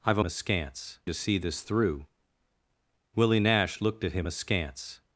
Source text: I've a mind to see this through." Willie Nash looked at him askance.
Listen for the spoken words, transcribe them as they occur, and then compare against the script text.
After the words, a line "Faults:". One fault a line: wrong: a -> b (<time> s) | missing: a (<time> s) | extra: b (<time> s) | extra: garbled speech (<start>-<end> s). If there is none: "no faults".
I've a askance to see this through." Willie Nash looked at him askance.
Faults:
wrong: mind -> askance (0.2 s)